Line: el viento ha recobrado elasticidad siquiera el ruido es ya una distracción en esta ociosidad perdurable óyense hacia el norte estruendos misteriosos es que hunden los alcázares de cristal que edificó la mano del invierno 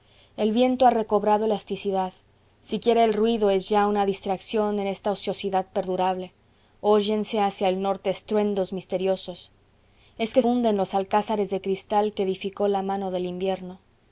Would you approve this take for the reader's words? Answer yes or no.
yes